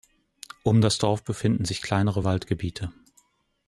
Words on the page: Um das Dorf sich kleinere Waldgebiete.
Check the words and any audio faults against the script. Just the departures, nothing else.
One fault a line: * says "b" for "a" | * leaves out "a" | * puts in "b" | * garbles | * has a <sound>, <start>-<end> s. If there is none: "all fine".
* puts in "befinden"